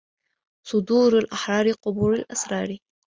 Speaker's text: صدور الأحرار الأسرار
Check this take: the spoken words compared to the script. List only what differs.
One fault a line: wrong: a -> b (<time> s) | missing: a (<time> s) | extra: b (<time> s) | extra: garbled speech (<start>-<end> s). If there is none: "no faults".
extra: قبور (1.7 s)